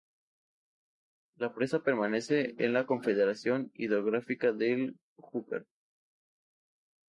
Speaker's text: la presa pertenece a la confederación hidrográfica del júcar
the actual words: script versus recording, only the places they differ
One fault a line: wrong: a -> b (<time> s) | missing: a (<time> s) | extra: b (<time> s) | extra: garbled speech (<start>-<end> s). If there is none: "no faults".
no faults